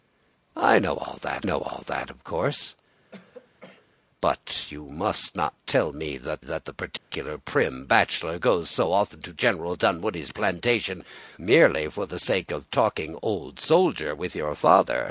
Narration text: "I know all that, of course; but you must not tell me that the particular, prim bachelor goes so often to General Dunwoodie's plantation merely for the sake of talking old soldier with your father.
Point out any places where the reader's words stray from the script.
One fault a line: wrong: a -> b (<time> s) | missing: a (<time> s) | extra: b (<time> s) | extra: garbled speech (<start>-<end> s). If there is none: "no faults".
extra: know all that (1.4 s)
extra: that (6.4 s)